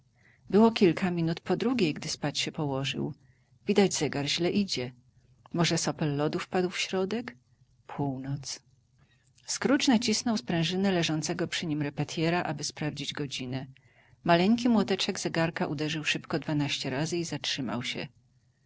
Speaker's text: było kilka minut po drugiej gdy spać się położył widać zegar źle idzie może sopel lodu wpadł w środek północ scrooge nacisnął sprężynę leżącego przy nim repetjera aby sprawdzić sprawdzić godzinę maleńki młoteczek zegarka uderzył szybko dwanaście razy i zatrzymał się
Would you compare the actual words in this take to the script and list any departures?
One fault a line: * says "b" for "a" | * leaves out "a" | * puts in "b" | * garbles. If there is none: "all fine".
* leaves out "sprawdzić"